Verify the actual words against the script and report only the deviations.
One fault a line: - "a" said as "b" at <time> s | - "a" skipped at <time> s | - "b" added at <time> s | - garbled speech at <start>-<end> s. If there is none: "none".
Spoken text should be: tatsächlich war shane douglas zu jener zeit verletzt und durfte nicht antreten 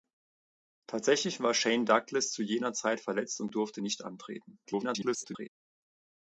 - garbled speech at 4.6-5.5 s